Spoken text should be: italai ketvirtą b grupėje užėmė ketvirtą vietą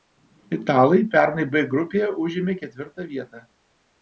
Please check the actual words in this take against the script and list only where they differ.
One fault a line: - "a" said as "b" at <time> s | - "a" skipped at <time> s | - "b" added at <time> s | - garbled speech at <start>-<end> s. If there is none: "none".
- "ketvirtą" said as "pernai" at 1.1 s